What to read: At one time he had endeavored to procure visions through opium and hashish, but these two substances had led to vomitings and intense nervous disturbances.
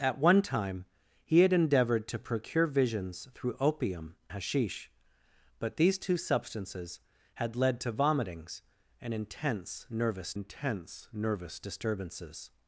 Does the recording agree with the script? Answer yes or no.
no